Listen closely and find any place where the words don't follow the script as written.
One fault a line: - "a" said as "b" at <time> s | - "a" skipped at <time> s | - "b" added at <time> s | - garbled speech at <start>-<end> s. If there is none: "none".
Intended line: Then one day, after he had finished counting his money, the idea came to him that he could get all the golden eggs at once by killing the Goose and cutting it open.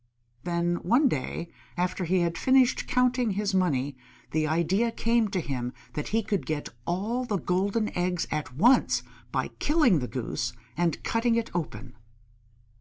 none